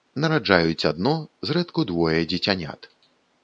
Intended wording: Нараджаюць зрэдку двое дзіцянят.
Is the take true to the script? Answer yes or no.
no